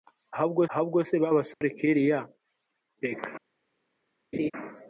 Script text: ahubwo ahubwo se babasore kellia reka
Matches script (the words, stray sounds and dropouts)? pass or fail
fail